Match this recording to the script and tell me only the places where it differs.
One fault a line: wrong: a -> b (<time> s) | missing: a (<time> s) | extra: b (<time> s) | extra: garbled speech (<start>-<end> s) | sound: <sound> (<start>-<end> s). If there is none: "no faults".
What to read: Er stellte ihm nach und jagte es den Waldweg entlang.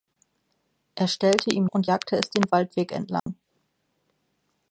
missing: nach (1.6 s)
sound: dropout (3.2-3.3 s)